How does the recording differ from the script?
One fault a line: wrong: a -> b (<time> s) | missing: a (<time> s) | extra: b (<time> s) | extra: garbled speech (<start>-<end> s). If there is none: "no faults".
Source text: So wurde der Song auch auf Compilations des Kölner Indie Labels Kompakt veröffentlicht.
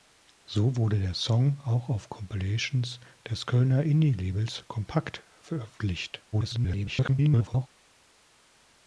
extra: garbled speech (6.3-7.7 s)